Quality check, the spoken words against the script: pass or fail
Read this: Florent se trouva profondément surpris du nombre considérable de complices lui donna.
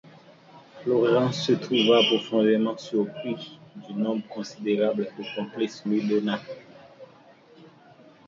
pass